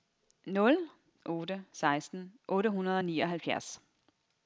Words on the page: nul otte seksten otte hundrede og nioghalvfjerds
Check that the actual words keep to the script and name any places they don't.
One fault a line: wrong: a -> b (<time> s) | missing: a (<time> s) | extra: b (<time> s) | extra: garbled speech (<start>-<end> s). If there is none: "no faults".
no faults